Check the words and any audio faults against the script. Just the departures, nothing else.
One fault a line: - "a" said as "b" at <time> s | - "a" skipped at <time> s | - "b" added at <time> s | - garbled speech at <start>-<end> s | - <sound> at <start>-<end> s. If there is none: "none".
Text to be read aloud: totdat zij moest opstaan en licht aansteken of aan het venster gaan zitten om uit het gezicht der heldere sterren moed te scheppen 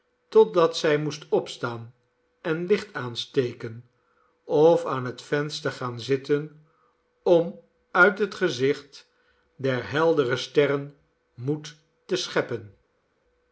none